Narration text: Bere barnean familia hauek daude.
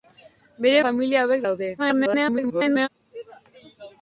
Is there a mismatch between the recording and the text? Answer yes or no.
yes